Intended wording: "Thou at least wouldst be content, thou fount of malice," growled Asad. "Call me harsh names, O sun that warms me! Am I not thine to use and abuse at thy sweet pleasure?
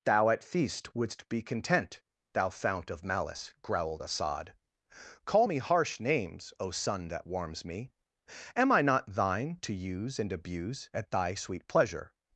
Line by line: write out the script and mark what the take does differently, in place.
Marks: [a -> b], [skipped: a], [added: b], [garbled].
"Thou at [least -> feast] wouldst be content, thou fount of malice," growled Asad. "Call me harsh names, O sun that warms me! Am I not thine to use and abuse at thy sweet pleasure?